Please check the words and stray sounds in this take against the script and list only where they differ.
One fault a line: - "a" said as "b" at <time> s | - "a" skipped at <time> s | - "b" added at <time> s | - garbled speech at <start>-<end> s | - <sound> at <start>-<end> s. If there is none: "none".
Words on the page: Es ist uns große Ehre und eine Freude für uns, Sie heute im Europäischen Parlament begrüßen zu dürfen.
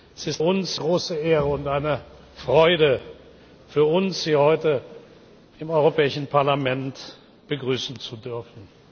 none